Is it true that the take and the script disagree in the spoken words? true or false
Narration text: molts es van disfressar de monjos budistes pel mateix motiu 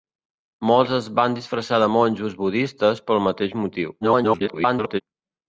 true